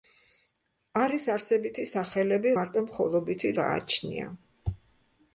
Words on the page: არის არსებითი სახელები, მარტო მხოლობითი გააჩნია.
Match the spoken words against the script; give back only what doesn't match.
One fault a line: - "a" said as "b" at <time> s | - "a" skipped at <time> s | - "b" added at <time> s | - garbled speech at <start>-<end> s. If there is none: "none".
none